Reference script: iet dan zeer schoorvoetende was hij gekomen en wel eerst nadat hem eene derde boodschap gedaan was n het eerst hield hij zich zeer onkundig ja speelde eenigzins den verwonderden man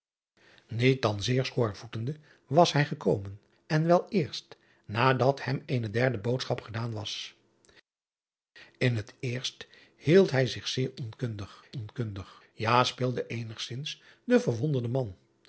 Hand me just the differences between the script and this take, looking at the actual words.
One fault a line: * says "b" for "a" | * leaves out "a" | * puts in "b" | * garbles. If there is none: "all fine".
* puts in "onkundig"